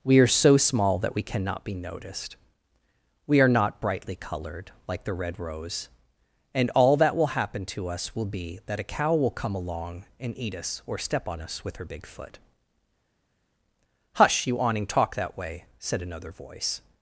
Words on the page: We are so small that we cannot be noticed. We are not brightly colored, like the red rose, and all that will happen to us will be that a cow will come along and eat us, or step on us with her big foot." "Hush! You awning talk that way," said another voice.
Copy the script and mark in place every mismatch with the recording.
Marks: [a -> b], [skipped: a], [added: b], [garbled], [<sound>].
We are so small that we cannot be noticed. We are not brightly colored, like the red rose, and all that will happen to us will be that a cow will come along and eat us, or step on us with her big foot." "Hush! You awning talk that way," said another voice.